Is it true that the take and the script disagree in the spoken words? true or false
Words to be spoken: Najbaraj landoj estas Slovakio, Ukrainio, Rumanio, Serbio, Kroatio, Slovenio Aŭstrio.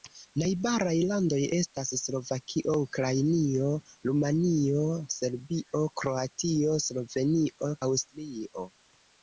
false